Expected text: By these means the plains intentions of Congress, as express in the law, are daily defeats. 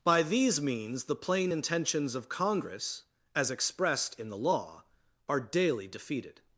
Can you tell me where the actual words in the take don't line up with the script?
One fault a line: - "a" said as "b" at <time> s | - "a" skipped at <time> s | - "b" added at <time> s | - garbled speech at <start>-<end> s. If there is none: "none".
- "plains" said as "plain" at 1.1 s
- "express" said as "expressed" at 3.5 s
- "defeats" said as "defeated" at 5.9 s